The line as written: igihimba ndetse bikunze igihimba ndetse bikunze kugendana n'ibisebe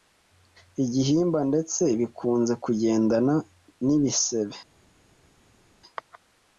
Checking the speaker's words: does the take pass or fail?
fail